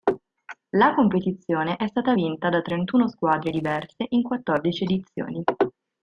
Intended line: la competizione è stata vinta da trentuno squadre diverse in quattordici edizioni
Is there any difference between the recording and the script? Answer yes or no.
no